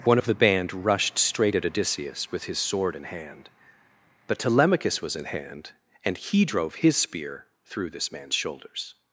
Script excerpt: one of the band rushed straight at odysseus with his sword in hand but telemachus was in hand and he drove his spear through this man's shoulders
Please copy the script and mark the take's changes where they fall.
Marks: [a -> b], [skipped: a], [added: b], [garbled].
one of the band rushed straight at odysseus with his sword in hand but telemachus was in hand and he drove his spear through this man's shoulders